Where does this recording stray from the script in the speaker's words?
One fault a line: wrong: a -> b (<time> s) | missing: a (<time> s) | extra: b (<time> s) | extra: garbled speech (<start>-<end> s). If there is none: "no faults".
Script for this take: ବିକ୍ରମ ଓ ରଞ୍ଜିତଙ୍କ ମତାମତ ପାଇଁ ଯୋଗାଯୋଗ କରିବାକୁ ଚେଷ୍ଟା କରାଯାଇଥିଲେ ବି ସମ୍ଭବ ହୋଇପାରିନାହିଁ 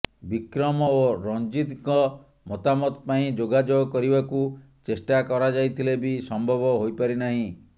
no faults